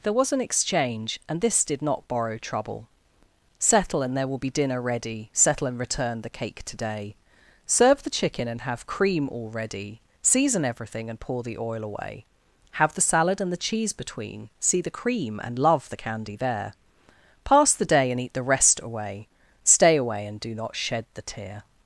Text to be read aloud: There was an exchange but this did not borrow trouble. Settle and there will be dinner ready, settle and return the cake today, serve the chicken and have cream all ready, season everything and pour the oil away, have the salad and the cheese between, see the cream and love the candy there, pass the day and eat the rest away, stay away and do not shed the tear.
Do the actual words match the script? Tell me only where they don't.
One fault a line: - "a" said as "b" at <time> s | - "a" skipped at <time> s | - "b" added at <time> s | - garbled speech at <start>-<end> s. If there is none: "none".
- "but" said as "and" at 1.3 s